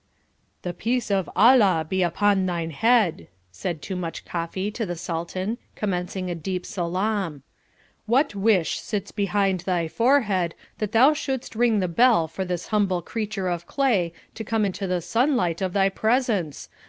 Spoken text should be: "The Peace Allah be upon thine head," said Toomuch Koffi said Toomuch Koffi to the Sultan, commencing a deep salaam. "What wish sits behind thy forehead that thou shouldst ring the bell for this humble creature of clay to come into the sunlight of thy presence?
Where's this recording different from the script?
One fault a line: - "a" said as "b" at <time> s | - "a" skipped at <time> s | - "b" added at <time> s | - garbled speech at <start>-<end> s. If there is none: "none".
- "of" added at 1.1 s
- "said Toomuch Koffi" skipped at 4.7 s